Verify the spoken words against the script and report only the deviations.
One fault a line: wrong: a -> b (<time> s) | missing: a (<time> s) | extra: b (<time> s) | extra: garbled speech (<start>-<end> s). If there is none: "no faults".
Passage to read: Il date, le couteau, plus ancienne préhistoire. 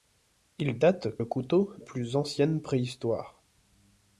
no faults